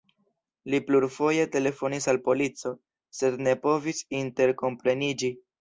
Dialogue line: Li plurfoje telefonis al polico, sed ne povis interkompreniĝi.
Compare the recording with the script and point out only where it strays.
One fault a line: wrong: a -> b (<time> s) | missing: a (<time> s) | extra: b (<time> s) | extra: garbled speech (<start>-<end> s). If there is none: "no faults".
no faults